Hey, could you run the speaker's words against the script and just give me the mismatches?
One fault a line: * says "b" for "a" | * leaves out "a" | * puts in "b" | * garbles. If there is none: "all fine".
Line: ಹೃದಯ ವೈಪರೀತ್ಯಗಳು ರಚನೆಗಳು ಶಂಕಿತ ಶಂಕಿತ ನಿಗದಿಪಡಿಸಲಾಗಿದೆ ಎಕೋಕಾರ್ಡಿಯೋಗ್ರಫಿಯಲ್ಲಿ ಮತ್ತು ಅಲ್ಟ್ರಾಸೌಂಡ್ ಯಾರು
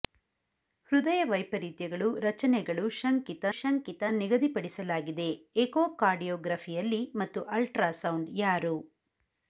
all fine